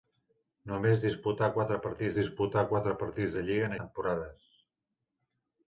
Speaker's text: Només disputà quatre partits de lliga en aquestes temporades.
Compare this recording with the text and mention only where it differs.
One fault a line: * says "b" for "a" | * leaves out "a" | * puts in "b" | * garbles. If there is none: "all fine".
* puts in "disputà quatre partits"
* leaves out "aquestes"